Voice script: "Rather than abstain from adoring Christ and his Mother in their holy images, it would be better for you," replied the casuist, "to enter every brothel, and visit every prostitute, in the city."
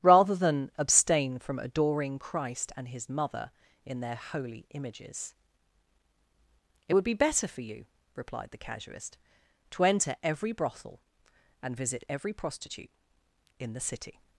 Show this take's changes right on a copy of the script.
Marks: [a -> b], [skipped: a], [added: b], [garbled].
"Rather than abstain from adoring Christ and his Mother in their holy images, it would be better for you," replied the casuist, "to enter every brothel, and visit every prostitute, in the city."